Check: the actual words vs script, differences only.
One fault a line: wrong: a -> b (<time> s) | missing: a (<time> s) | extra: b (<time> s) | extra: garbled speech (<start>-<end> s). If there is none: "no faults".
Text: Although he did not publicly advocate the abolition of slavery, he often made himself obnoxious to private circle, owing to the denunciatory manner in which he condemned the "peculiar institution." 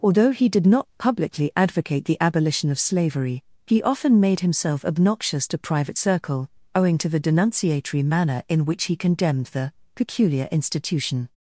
no faults